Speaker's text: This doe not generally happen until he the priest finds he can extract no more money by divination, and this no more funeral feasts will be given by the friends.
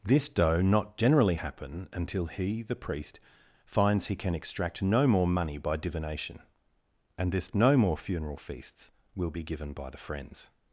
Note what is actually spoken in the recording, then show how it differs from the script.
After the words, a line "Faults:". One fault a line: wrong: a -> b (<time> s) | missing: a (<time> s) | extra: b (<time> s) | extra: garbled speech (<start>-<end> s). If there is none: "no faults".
This doe not generally happen until he the priest finds he can extract no more money by divination, and this no more funeral feasts will be given by the friends.
Faults:
no faults